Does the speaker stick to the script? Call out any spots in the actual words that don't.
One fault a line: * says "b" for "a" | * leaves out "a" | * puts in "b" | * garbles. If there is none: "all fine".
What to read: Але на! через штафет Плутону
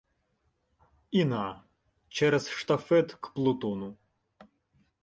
* says "І" for "Але"
* puts in "к"